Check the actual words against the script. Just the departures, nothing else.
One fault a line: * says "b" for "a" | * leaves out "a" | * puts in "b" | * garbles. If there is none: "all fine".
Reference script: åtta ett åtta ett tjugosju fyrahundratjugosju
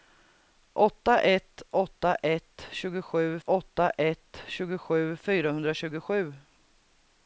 * puts in "åtta ett tjugosju"